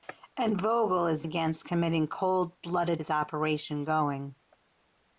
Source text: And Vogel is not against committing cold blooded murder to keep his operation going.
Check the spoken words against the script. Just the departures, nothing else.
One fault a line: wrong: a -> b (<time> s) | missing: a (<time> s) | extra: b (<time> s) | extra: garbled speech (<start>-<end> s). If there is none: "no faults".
missing: not (1.3 s)
missing: murder to keep (3.0 s)